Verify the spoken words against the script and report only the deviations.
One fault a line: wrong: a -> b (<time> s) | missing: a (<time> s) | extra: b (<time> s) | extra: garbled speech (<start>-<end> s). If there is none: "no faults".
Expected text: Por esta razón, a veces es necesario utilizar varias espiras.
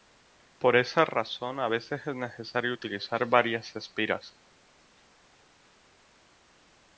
wrong: esta -> esa (0.8 s)